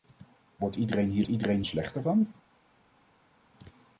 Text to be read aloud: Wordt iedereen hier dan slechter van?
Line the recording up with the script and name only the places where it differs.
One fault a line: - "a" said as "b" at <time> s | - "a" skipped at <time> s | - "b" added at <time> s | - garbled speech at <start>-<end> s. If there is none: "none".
- "dan" said as "iedereen" at 1.3 s